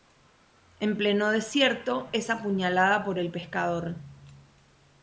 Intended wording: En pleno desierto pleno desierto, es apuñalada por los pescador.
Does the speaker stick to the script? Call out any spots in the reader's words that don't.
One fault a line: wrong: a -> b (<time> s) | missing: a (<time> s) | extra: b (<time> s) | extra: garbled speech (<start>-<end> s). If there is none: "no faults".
missing: pleno desierto (2.1 s)
wrong: los -> el (3.2 s)